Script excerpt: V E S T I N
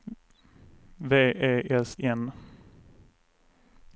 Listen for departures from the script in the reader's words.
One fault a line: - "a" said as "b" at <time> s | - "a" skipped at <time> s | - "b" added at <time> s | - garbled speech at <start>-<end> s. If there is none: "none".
- "T I" skipped at 1.9 s